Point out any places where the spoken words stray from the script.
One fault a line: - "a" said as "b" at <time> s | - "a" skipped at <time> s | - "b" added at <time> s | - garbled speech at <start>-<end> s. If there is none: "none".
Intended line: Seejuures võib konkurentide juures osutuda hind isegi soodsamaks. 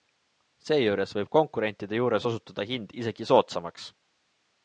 none